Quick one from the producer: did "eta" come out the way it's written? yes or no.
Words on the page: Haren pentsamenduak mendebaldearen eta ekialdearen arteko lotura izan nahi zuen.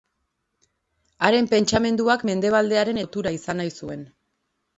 no